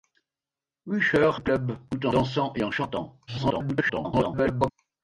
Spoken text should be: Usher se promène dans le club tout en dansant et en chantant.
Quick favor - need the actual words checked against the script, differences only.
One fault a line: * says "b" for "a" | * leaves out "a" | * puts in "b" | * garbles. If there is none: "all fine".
* leaves out "se promène dans"
* garbles